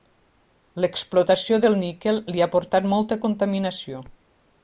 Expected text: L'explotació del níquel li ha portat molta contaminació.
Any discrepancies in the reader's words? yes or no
no